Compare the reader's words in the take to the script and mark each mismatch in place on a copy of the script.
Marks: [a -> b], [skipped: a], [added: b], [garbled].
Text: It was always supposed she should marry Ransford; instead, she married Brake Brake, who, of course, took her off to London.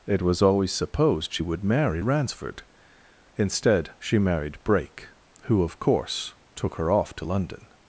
It was always supposed she [should -> would] marry Ransford; instead, she married Brake [skipped: Brake,] who, of course, took her off to London.